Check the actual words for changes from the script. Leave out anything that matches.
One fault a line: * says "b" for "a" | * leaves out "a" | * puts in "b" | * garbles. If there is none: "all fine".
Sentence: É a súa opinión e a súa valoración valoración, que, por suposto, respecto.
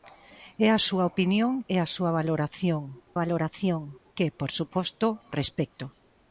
all fine